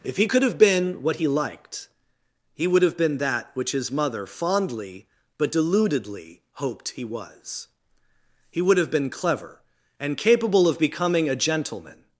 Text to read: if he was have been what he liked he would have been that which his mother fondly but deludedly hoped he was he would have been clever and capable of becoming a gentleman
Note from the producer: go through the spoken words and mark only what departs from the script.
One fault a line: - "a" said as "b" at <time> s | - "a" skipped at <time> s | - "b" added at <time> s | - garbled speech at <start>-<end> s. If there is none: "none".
- "was" said as "could" at 0.2 s